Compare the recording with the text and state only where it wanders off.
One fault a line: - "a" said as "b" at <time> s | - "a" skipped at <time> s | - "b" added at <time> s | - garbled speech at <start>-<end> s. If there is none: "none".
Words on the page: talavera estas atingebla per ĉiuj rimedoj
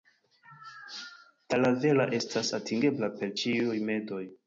none